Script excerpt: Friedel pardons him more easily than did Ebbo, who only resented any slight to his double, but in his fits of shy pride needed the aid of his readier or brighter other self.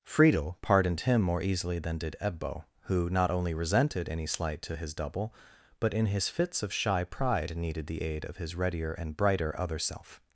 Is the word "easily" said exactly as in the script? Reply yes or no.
yes